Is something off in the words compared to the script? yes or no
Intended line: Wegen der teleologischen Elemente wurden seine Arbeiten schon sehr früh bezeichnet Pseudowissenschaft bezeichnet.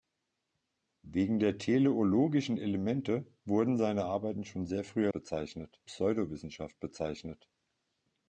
no